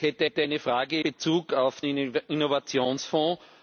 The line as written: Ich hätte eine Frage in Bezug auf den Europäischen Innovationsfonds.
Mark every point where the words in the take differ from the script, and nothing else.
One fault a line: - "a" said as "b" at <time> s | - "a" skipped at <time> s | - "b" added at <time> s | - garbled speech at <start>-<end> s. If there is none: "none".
- "hätte" added at 0.2 s
- "in" skipped at 1.0 s
- "den Europäischen" skipped at 1.8 s